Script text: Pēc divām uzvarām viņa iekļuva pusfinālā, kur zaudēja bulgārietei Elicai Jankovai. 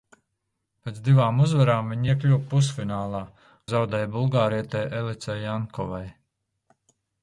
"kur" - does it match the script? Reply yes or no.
no